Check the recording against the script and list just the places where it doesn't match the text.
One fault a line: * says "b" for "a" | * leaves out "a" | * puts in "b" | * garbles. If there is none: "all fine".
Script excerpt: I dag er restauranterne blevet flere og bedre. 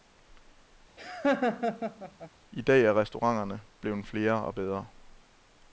all fine